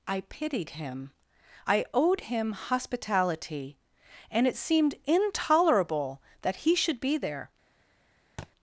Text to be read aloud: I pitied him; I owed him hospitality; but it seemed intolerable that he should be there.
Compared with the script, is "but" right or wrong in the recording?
wrong